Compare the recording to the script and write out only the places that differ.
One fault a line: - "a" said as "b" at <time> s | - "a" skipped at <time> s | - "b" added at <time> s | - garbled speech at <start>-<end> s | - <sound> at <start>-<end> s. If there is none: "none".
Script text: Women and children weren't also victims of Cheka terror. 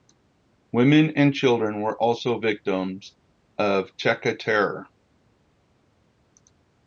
- "weren't" said as "were" at 1.8 s